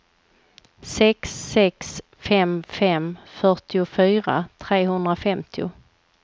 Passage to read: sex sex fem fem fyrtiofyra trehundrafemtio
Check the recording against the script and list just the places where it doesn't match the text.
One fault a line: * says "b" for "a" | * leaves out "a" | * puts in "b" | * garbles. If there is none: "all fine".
all fine